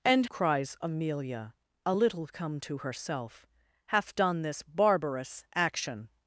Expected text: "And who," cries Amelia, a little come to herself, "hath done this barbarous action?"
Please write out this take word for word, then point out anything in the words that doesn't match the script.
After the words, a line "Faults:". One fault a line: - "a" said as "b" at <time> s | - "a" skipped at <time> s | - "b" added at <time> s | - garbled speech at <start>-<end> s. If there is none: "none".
"And," cries Amelia, a little come to herself, "hath done this barbarous action?"
Faults:
- "who" skipped at 0.2 s